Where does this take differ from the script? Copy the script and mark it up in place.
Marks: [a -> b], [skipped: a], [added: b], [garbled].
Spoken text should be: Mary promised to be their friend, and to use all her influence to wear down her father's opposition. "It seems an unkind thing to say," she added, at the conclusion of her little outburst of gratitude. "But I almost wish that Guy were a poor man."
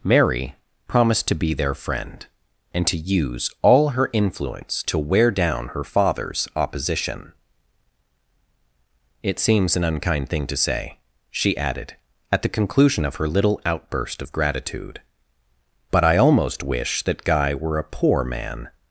Mary promised to be their friend, and to use all her influence to wear down her father's opposition. "It seems an unkind thing to say," she added, at the conclusion of her little outburst of gratitude. "But I almost wish that Guy were a poor man."